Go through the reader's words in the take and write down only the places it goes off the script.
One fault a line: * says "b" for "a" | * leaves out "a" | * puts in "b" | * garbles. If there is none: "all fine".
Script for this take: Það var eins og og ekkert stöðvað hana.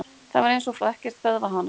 all fine